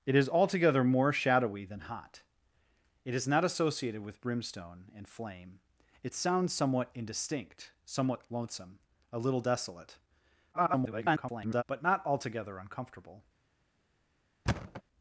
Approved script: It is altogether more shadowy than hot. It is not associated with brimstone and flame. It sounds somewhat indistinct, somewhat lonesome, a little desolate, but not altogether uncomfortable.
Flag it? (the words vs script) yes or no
yes